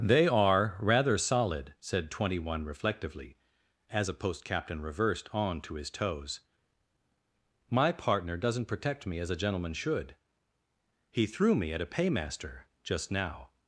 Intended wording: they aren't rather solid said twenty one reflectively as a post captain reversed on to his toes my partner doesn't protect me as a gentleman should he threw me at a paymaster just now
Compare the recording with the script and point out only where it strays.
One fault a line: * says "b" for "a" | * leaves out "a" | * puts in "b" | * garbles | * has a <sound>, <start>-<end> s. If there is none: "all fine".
* says "are" for "aren't"